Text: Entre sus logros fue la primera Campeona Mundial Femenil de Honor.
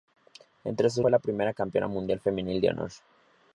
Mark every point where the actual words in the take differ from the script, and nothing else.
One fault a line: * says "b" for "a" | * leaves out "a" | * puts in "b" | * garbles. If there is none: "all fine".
* leaves out "logros"